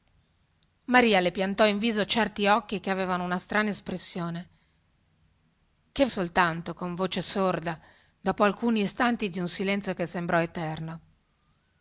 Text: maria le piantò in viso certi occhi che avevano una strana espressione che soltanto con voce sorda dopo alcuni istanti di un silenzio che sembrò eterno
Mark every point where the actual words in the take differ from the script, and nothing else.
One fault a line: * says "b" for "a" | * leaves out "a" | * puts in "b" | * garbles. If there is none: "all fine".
all fine